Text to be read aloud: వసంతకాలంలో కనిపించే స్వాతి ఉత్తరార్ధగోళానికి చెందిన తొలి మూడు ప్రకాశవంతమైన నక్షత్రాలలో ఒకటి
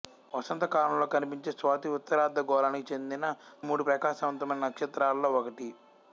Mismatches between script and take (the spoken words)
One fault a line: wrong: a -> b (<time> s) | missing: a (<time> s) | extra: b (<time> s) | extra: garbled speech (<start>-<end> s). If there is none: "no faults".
missing: తొలి (3.3 s)